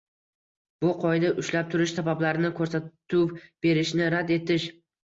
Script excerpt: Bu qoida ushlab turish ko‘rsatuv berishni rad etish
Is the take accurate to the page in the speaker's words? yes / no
no